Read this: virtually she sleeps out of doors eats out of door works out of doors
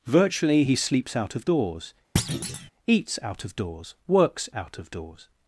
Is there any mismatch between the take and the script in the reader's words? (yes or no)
yes